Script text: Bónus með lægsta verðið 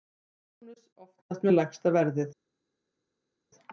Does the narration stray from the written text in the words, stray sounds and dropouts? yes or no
yes